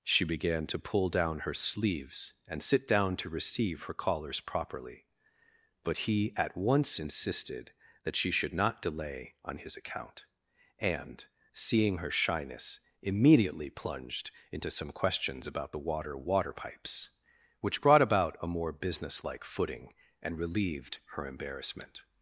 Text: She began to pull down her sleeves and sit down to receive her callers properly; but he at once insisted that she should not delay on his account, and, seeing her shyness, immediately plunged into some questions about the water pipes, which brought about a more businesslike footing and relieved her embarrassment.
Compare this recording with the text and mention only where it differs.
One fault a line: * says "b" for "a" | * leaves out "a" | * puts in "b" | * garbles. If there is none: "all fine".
* puts in "water"